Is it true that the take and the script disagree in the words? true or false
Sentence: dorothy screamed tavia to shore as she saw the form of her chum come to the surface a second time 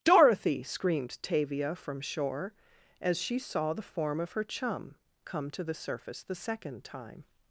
true